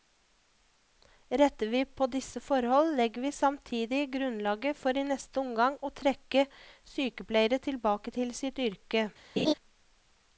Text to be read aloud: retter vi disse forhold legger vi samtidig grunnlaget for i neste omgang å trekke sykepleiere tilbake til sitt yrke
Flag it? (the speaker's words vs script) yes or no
yes